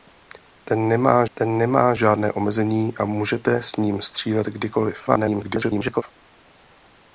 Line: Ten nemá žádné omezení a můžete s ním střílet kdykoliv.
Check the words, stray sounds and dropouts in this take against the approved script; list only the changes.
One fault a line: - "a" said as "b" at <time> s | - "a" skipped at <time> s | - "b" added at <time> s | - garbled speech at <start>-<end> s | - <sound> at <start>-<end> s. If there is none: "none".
- "ten nemá" added at 1.3 s
- garbled speech at 5.1-6.0 s